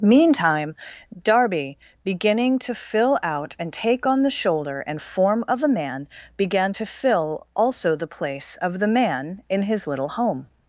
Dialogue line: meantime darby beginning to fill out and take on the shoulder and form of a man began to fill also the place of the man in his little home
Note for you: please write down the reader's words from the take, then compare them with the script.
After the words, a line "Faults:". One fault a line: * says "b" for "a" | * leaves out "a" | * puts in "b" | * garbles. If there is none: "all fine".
meantime darby beginning to fill out and take on the shoulder and form of a man began to fill also the place of the man in his little home
Faults:
all fine